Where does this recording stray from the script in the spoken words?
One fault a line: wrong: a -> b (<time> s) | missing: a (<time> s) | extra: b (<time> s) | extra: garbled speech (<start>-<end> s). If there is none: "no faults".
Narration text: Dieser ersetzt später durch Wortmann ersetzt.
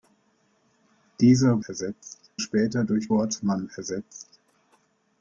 no faults